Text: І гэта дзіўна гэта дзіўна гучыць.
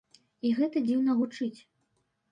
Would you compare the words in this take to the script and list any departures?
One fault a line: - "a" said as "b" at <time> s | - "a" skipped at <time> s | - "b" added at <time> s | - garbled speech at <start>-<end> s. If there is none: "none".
- "гэта дзіўна" skipped at 1.2 s